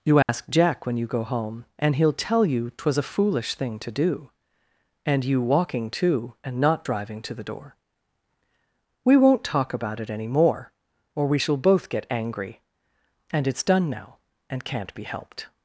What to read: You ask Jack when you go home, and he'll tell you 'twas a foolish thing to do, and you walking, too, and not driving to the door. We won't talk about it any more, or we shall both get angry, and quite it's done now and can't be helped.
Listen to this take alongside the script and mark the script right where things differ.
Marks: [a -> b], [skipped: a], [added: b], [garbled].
You ask Jack when you go home, and he'll tell you 'twas a foolish thing to do, and you walking, too, and not driving to the door. We won't talk about it any more, or we shall both get angry, and [skipped: quite] it's done now and can't be helped.